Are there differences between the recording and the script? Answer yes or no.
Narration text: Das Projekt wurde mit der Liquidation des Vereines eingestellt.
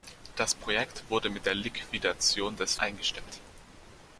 yes